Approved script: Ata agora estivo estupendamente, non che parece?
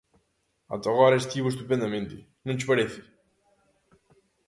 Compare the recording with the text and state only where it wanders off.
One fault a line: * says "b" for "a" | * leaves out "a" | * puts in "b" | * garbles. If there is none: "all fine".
all fine